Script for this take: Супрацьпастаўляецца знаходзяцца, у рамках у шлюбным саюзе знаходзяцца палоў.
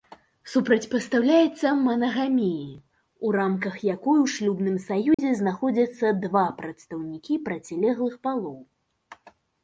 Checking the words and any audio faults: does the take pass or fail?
fail